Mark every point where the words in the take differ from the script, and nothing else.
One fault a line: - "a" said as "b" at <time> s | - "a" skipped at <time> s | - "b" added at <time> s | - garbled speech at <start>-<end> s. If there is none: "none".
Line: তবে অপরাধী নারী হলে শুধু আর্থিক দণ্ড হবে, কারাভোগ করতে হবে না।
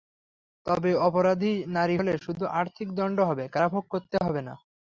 none